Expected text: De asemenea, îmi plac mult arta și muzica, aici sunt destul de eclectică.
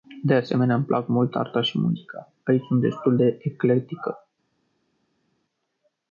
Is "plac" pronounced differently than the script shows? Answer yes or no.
no